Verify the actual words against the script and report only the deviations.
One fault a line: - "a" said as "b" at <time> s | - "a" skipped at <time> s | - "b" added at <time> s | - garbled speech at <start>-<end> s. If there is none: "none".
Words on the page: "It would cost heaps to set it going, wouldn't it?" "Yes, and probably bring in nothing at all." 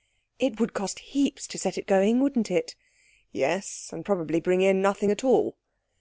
none